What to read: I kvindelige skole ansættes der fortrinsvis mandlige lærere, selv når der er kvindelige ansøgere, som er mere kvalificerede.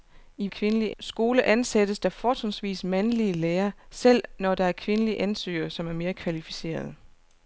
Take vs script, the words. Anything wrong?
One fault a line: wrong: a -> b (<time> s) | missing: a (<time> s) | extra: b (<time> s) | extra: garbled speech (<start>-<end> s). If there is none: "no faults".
no faults